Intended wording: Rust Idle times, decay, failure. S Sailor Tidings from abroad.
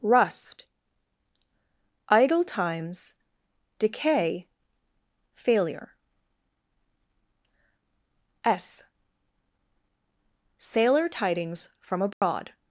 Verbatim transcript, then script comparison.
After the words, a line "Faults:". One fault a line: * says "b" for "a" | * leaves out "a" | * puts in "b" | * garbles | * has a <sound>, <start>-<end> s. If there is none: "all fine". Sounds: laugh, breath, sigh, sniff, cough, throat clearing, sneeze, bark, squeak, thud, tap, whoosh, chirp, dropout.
Rust Idle times, decay, failure. S Sailor Tidings from abroad.
Faults:
* has a dropout, 12.1-12.2 s